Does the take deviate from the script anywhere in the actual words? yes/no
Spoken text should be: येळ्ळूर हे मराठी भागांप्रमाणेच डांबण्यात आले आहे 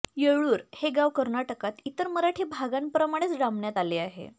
yes